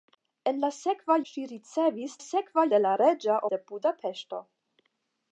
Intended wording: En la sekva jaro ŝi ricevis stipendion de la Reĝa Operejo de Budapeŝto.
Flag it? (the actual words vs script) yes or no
yes